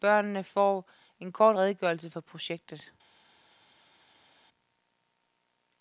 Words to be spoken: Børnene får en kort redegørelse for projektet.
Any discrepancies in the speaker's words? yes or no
no